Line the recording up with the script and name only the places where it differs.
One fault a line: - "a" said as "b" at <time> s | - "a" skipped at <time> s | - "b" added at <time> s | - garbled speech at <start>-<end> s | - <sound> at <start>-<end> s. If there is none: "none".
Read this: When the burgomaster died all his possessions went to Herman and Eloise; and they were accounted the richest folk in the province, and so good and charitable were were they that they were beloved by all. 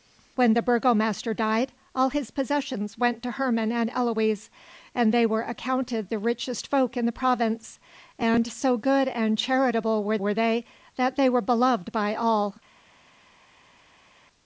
none